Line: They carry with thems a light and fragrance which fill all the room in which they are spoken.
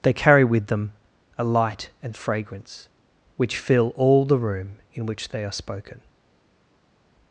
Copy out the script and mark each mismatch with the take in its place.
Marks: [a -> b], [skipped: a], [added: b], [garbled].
They carry with [thems -> them] a light and fragrance which fill all the room in which they are spoken.